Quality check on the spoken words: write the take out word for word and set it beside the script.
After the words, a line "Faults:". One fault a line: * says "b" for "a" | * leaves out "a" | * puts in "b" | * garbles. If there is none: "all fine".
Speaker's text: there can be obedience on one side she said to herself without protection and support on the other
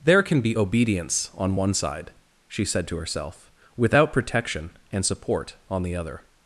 there can be obedience on one side she said to herself without protection and support on the other
Faults:
all fine